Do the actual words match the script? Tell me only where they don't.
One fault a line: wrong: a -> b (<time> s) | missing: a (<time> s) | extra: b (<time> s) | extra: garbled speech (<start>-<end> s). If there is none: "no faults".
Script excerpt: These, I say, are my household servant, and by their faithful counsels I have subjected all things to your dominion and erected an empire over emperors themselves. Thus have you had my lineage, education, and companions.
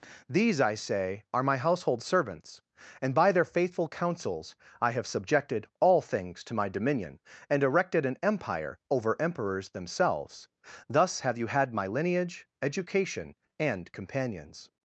wrong: servant -> servants (2.0 s)
wrong: your -> my (6.5 s)